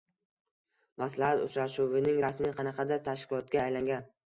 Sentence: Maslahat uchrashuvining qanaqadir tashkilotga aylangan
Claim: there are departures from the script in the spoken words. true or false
true